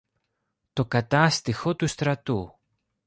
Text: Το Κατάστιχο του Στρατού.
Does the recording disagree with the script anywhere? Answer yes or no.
no